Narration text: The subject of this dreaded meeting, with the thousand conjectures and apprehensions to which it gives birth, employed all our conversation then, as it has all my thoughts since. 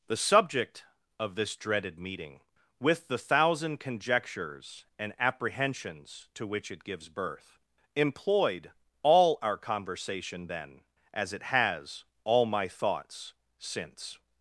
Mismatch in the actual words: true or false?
false